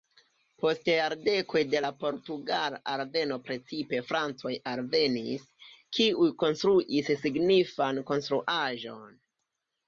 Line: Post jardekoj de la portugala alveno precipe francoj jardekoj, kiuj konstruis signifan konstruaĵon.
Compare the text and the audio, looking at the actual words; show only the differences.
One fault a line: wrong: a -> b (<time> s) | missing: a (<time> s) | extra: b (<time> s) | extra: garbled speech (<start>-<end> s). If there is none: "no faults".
wrong: jardekoj -> alvenis (4.7 s)